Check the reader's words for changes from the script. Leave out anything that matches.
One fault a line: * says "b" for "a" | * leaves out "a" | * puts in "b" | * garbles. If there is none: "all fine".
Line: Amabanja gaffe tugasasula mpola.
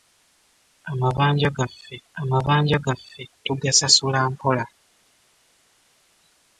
* puts in "amabanja gaffe"